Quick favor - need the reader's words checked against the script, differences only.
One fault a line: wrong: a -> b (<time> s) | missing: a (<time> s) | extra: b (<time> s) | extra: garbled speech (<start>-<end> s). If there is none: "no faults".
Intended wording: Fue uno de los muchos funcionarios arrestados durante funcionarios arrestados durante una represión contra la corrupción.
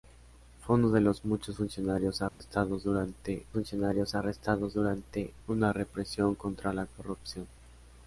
no faults